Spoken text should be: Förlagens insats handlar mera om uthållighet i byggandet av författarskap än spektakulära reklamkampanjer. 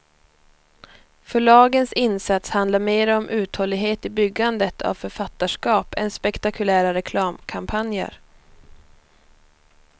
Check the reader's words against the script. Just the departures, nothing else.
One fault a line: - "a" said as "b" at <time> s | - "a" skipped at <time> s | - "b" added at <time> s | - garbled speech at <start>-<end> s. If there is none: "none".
none